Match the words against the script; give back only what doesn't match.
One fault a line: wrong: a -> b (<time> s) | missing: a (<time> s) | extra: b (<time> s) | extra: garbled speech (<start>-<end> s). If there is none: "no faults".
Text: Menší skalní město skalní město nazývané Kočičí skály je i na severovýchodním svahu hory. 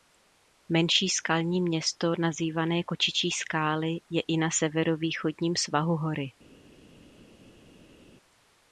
missing: skalní město (2.1 s)